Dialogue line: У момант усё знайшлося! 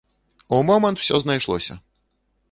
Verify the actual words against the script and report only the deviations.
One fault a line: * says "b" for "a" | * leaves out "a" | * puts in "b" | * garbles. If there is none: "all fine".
all fine